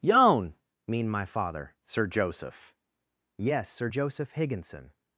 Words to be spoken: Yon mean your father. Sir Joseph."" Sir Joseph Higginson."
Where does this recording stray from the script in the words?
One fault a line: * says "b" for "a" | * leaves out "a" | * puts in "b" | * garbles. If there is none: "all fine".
* says "my" for "your"
* puts in "Yes"